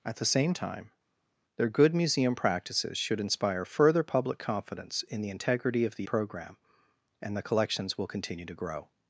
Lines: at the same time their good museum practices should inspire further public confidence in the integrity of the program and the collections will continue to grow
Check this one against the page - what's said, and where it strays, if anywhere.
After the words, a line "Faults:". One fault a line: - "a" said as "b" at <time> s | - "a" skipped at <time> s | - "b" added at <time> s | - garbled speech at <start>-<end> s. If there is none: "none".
at the same time their good museum practices should inspire further public confidence in the integrity of the program and the collections will continue to grow
Faults:
none